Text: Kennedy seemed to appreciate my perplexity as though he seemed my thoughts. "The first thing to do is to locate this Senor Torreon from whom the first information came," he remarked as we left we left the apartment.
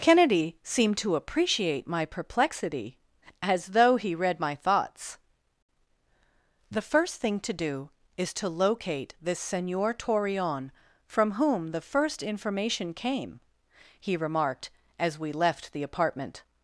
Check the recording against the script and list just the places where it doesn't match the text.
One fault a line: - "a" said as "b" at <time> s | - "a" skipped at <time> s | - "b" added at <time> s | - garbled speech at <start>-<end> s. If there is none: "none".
- "seemed" said as "read" at 4.2 s
- "we left" skipped at 15.7 s